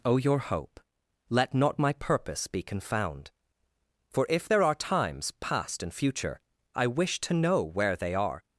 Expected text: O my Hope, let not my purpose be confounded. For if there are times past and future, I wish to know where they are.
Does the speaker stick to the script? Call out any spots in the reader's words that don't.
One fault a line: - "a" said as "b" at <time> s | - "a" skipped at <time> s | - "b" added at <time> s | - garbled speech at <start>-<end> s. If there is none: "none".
- "my" said as "your" at 0.2 s
- "confounded" said as "confound" at 2.6 s